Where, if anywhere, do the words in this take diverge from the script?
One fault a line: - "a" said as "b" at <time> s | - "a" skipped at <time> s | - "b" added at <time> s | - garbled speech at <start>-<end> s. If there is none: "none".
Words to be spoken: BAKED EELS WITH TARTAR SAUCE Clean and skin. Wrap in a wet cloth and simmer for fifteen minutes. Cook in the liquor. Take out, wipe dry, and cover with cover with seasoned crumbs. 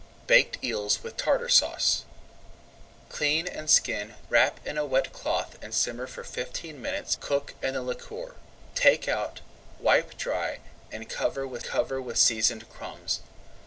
none